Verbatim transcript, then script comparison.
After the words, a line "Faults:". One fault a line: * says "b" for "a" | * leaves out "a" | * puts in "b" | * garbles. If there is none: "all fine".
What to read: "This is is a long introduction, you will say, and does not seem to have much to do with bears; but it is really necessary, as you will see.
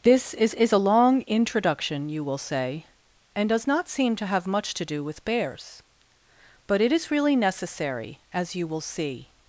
"This is is a long introduction, you will say, and does not seem to have much to do with bears; but it is really necessary, as you will see.
Faults:
all fine